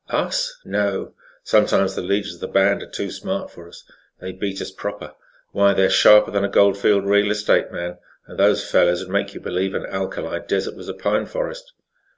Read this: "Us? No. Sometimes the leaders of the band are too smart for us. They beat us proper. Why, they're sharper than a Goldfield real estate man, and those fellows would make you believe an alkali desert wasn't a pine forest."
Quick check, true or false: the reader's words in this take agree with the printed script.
false